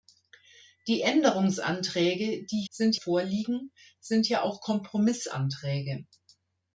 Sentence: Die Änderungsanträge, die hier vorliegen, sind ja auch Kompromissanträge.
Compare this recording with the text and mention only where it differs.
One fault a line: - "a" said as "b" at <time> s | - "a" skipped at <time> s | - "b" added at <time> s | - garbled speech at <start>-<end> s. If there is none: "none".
- "hier" said as "sind" at 2.7 s